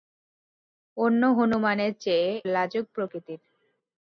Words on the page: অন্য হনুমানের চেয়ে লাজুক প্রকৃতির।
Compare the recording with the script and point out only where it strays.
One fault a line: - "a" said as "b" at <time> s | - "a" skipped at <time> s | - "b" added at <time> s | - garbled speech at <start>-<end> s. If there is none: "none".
none